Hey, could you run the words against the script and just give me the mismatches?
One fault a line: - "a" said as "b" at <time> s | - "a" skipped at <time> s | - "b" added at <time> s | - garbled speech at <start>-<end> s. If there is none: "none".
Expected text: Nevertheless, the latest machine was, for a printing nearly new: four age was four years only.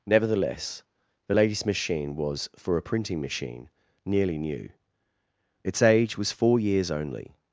- "machine" added at 3.2 s
- "four" said as "its" at 5.6 s